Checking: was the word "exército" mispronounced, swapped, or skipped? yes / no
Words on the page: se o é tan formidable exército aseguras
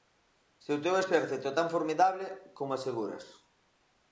yes